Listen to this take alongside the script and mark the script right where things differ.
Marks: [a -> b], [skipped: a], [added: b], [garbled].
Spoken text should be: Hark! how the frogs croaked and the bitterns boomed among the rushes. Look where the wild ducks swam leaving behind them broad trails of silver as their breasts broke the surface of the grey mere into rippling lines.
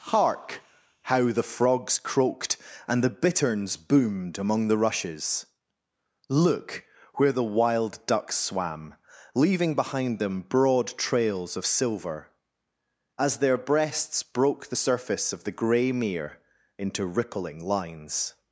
Hark! how the frogs croaked and the bitterns boomed among the rushes. Look where the wild ducks swam leaving behind them broad trails of silver as their breasts broke the surface of the grey mere into rippling lines.